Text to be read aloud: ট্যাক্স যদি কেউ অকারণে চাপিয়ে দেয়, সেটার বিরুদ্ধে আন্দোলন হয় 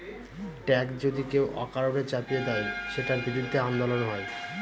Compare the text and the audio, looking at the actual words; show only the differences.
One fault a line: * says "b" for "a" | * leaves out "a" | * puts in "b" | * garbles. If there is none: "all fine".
all fine